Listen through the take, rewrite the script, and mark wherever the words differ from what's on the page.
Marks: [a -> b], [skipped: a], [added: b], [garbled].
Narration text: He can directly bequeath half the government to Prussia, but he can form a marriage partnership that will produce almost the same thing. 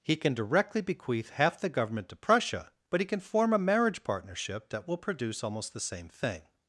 He can directly bequeath half the government to Prussia, but he can form a marriage partnership that will produce almost the same thing.